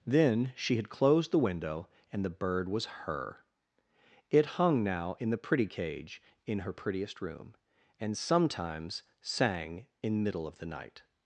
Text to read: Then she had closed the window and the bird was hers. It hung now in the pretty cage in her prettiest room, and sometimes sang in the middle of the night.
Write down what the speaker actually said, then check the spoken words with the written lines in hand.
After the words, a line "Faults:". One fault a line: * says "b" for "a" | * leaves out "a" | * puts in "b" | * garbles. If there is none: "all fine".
Then she had closed the window and the bird was her. It hung now in the pretty cage in her prettiest room, and sometimes sang in middle of the night.
Faults:
* says "her" for "hers"
* leaves out "the"